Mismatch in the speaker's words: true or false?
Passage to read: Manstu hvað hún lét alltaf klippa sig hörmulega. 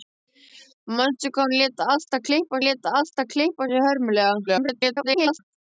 true